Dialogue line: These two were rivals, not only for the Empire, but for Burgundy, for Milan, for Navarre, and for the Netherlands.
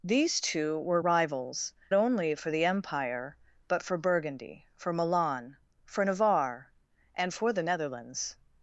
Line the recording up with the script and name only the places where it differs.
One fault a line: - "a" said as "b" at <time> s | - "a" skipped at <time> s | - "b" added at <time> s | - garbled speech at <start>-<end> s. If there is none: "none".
- "not" skipped at 1.7 s